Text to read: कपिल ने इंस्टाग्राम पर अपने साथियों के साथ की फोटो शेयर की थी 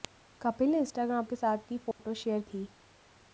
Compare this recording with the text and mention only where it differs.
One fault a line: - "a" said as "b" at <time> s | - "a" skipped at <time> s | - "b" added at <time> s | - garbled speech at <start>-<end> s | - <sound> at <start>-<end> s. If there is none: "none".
- "पर अपने साथियों" skipped at 1.2 s
- dropout at 1.9-2.0 s
- "की" skipped at 2.4 s